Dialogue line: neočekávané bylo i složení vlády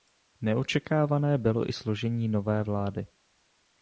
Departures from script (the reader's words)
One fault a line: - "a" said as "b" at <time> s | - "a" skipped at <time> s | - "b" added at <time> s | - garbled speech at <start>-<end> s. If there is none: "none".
- "nové" added at 2.3 s